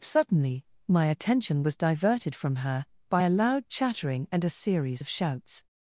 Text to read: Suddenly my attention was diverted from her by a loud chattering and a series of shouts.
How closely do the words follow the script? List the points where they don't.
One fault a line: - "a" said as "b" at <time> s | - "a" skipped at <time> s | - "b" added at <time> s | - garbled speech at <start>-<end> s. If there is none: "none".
none